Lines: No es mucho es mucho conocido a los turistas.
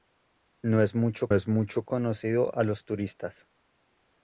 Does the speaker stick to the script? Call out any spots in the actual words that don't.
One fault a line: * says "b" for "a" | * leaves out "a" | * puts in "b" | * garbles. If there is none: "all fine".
all fine